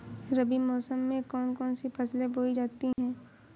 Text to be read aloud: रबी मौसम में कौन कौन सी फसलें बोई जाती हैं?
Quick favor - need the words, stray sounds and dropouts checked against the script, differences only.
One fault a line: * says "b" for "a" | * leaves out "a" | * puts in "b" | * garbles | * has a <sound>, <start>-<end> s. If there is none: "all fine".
* has a dropout, 2.9-3.0 s